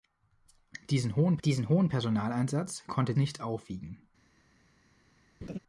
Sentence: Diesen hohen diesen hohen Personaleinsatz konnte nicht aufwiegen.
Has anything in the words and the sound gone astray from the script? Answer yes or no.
yes